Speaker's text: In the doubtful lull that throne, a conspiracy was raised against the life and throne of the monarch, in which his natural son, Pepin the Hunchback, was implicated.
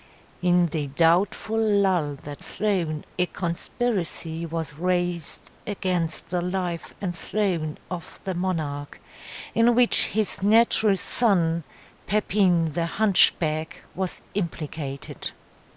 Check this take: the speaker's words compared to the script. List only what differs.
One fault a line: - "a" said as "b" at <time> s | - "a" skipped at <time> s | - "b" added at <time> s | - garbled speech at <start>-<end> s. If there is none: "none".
none